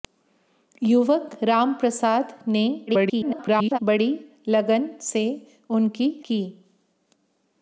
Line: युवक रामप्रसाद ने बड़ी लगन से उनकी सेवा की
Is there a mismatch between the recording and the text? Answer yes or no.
yes